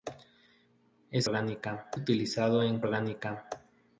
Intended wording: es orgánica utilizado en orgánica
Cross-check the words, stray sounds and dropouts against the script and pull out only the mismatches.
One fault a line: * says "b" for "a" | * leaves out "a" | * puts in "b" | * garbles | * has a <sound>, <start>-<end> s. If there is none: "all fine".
all fine